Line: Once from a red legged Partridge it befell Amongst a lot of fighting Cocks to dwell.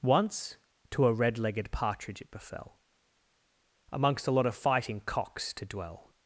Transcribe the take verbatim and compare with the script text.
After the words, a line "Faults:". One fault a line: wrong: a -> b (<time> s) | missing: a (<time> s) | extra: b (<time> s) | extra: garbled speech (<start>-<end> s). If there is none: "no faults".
Once to a red legged Partridge it befell Amongst a lot of fighting Cocks to dwell.
Faults:
wrong: from -> to (0.9 s)